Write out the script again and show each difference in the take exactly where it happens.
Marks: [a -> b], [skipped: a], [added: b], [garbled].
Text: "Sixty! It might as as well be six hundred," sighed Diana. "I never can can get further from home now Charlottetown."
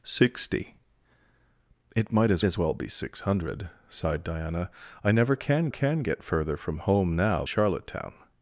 "Sixty! It might as as well be six hundred," sighed Diana. "I never can can get further from home now Charlottetown."